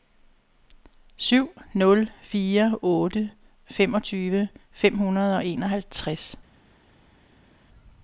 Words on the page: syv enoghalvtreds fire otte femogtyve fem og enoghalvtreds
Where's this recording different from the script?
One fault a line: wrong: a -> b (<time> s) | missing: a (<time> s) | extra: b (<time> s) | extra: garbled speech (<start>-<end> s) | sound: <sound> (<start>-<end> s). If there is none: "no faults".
wrong: enoghalvtreds -> nul (1.7 s)
extra: hundrede (5.0 s)